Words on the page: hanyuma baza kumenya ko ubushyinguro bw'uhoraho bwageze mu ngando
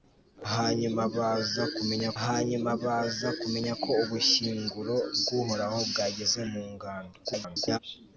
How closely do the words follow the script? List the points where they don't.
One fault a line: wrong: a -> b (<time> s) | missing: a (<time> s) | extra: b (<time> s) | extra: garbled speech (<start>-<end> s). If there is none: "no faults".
extra: hanyuma baza kumenya (2.2 s)
extra: garbled speech (7.2-7.8 s)